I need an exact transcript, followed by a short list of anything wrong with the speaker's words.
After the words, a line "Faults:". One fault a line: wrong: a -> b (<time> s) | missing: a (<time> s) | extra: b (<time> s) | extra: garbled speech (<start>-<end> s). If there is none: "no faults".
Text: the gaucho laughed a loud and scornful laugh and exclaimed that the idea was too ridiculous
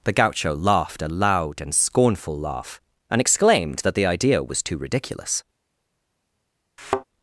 the gaucho laughed a loud and scornful laugh and exclaimed that the idea was too ridiculous
Faults:
no faults